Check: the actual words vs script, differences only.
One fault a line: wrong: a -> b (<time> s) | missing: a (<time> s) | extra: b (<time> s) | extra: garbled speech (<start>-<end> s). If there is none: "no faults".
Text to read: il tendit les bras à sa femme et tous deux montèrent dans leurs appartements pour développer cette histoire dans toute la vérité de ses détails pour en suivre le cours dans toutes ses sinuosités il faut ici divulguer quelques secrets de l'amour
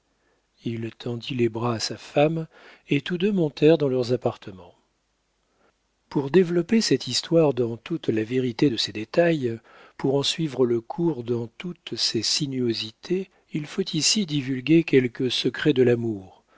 no faults